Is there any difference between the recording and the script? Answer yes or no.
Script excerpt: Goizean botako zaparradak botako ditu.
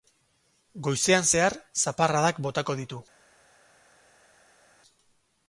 yes